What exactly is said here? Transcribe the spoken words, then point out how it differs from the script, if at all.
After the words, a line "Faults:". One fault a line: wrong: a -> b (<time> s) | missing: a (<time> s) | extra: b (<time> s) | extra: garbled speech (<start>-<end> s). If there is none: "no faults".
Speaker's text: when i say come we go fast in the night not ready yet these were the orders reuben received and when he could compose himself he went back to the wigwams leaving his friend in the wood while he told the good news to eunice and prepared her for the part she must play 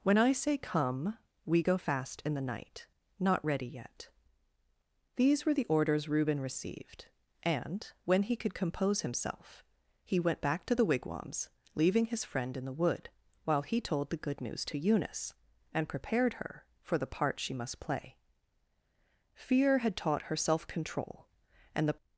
when i say come we go fast in the night not ready yet these were the orders reuben received and when he could compose himself he went back to the wigwams leaving his friend in the wood while he told the good news to eunice and prepared her for the part she must play fear had taught her self control and the
Faults:
extra: fear had taught her self control and the (19.3 s)